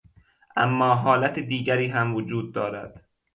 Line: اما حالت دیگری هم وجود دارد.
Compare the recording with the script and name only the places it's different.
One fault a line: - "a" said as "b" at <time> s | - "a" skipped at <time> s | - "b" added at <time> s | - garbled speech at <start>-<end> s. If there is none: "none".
none